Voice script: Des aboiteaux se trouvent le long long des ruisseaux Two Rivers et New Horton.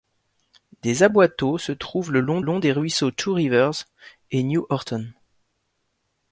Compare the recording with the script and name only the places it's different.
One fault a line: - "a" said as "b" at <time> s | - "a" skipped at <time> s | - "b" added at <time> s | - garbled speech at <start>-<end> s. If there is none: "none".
none